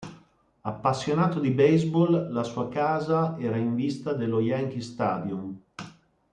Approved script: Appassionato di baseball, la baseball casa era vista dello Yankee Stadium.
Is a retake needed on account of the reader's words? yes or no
yes